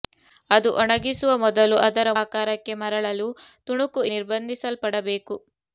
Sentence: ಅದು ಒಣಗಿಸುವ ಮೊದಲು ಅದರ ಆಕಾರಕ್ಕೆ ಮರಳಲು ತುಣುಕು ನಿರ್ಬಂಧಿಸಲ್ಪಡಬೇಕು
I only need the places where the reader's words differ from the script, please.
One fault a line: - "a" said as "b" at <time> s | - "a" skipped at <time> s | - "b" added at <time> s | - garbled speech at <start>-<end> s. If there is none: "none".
none